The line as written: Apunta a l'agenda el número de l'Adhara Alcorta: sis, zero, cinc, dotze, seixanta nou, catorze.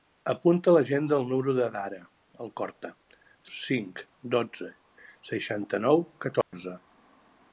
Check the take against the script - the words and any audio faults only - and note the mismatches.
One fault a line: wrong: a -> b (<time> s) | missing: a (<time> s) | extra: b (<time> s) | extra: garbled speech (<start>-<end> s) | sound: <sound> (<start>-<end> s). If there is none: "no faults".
missing: sis zero (2.9 s)
sound: dropout (6.4-6.5 s)